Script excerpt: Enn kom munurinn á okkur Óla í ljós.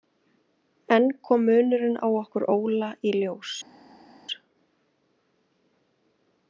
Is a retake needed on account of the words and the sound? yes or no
no